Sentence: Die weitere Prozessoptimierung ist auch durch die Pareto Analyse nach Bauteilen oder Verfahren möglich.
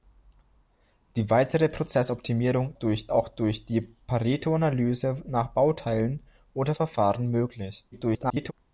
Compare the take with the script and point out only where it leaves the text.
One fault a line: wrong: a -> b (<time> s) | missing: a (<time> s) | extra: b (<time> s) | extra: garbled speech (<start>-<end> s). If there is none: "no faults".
wrong: ist -> durch (2.7 s)
extra: garbled speech (7.9-8.5 s)